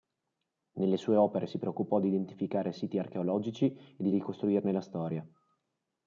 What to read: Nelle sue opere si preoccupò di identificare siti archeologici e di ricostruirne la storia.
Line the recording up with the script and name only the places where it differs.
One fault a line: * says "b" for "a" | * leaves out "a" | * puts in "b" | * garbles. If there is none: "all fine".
all fine